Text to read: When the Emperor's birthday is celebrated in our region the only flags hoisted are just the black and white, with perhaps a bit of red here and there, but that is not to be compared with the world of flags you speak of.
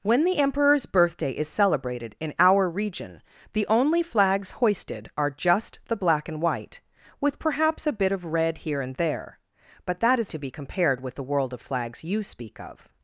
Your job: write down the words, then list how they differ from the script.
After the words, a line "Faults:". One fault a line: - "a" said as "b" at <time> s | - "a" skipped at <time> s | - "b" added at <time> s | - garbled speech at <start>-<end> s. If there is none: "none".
When the Emperor's birthday is celebrated in our region the only flags hoisted are just the black and white, with perhaps a bit of red here and there, but that is to be compared with the world of flags you speak of.
Faults:
- "not" skipped at 10.3 s